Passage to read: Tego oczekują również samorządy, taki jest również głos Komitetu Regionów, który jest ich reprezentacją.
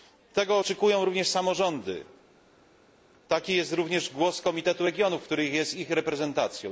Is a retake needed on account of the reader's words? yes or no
no